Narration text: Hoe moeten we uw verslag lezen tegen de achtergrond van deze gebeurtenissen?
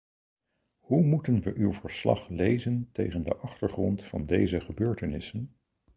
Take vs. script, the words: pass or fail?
pass